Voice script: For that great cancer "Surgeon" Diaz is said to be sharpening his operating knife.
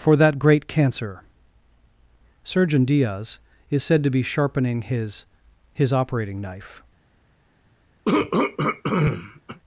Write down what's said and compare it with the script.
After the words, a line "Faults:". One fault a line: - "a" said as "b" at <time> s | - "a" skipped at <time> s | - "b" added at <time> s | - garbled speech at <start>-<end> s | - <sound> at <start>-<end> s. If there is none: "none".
For that great cancer "Surgeon" Diaz is said to be sharpening his his operating knife.
Faults:
- "his" added at 5.7 s
- throat clearing at 8.1-9.6 s